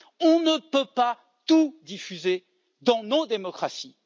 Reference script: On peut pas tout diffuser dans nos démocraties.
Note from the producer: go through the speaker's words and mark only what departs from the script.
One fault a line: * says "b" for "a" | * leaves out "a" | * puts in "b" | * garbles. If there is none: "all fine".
* puts in "ne"